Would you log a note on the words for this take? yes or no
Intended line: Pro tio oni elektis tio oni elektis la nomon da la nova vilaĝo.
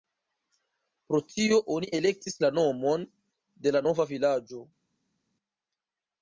yes